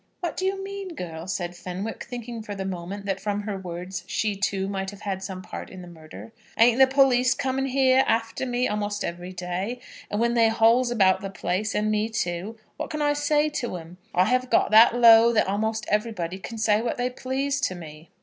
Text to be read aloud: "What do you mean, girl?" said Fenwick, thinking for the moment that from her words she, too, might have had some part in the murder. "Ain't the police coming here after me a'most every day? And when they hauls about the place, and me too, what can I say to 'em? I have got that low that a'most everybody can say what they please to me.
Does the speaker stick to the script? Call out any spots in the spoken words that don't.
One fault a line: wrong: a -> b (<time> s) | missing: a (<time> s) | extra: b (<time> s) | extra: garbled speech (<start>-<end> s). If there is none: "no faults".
no faults